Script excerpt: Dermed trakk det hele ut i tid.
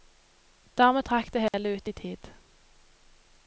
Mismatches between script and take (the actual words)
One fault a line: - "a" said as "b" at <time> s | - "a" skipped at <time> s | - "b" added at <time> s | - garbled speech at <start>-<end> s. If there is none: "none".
none